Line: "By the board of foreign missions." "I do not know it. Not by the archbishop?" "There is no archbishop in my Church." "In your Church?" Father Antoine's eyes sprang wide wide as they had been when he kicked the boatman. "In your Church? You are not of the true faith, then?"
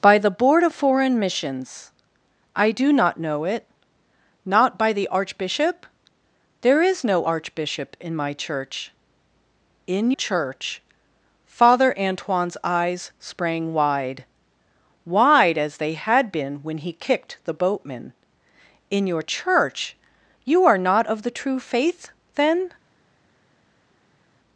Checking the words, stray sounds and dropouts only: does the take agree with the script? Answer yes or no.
no